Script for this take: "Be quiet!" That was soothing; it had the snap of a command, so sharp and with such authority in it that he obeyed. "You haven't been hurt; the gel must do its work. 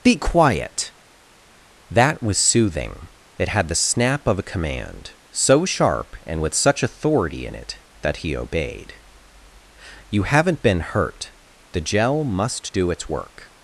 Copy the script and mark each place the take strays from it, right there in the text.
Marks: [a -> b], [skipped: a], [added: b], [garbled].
"Be quiet!" That was soothing; it had the snap of a command, so sharp and with such authority in it that he obeyed. "You haven't been hurt; the gel must do its work.